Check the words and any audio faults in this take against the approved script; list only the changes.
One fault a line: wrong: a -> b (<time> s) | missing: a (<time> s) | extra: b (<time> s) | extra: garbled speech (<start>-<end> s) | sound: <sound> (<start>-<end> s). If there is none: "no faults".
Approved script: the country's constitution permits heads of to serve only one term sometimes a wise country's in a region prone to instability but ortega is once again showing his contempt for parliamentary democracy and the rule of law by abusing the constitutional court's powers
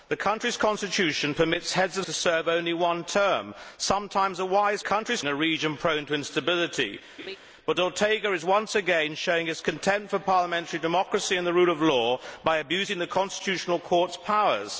sound: laugh (7.2-7.4 s)